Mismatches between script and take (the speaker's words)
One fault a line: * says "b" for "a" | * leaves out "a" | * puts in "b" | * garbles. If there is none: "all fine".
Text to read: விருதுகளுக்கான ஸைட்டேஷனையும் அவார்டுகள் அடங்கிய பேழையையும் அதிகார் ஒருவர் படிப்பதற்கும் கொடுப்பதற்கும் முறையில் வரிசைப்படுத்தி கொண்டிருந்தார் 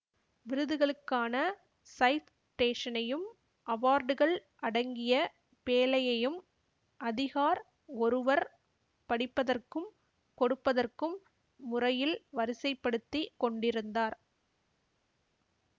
all fine